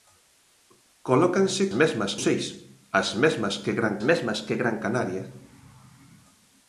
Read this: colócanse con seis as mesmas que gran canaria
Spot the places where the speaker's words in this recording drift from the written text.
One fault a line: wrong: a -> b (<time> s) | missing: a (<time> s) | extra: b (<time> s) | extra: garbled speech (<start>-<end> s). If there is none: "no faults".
wrong: con -> mesmas (1.8 s)
extra: mesmas que gran (4.1 s)